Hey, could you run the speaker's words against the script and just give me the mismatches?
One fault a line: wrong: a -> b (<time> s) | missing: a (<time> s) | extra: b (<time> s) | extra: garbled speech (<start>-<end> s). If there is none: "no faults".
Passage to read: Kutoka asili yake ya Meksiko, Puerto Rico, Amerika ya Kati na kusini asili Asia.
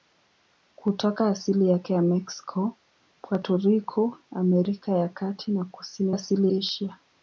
no faults